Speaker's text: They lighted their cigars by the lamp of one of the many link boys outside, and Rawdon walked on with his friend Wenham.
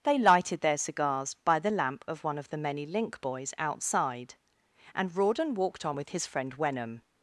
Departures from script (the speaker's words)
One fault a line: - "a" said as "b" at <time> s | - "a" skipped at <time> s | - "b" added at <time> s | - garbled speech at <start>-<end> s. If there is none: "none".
none